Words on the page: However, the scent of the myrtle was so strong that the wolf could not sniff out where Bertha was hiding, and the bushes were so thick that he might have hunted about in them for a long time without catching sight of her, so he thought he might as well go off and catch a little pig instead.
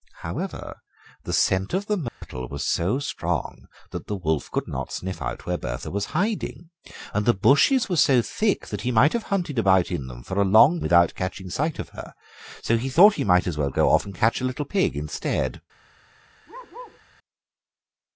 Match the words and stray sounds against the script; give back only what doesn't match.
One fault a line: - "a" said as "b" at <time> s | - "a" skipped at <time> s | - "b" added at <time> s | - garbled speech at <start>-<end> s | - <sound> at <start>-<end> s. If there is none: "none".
- dropout at 2.1-2.2 s
- "time" skipped at 10.8 s
- bark at 16.5-17.0 s